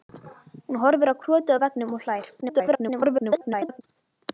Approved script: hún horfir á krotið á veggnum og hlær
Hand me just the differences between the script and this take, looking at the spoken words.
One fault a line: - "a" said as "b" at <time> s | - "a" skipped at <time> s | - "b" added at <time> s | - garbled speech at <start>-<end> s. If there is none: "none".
- garbled speech at 2.4-3.8 s